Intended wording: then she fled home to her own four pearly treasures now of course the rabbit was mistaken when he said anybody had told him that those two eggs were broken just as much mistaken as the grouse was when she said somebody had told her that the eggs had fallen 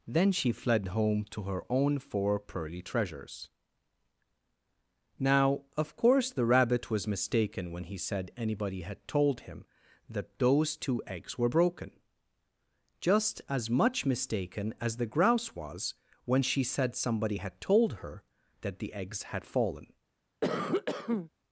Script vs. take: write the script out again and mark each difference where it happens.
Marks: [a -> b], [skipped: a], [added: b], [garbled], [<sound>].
then she fled home to her own four pearly treasures now of course the rabbit was mistaken when he said anybody had told him that those two eggs were broken just as much mistaken as the grouse was when she said somebody had told her that the eggs had fallen [cough]